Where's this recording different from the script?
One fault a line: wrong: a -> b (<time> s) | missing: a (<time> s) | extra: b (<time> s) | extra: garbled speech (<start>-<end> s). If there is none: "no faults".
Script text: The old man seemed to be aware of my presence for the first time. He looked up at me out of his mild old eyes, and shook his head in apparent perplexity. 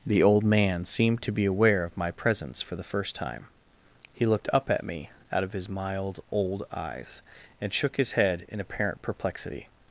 no faults